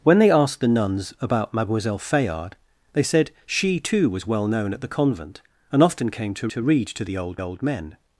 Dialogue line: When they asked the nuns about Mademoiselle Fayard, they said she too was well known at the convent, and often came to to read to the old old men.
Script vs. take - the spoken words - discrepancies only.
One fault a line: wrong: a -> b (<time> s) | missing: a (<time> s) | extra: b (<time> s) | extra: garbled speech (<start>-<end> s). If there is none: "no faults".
no faults